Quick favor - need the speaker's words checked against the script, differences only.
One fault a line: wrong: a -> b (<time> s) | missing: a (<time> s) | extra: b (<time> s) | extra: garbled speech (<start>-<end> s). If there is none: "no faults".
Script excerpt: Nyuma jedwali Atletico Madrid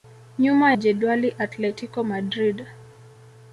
no faults